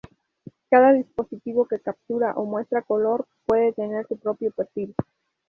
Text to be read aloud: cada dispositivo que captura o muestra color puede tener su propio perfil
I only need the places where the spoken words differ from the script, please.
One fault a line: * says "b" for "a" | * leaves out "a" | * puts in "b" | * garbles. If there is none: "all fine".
all fine